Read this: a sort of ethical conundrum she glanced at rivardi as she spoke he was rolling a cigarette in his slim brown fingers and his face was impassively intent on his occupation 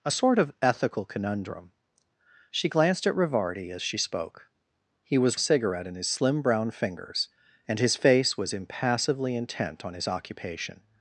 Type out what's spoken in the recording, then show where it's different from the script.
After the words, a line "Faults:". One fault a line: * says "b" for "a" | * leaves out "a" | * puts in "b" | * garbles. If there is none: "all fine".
a sort of ethical conundrum she glanced at rivardi as she spoke he was a cigarette in his slim brown fingers and his face was impassively intent on his occupation
Faults:
* leaves out "rolling"